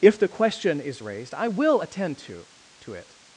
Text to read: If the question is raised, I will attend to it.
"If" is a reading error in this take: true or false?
false